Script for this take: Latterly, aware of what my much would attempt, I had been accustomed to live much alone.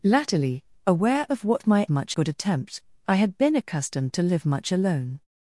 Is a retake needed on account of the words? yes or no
no